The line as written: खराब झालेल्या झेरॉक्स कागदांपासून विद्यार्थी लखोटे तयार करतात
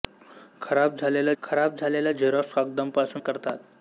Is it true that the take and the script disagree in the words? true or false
true